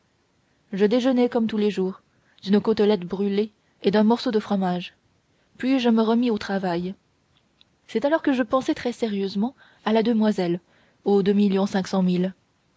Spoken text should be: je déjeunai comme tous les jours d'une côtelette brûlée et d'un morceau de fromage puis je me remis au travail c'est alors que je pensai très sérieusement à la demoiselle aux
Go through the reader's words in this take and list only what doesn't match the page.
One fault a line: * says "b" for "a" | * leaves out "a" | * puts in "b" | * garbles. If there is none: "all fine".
all fine